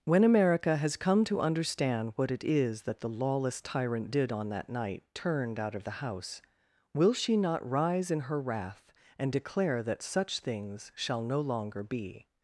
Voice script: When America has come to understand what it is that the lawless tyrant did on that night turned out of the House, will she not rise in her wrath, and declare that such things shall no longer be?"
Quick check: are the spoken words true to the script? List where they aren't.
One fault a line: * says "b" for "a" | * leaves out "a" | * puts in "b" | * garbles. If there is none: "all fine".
all fine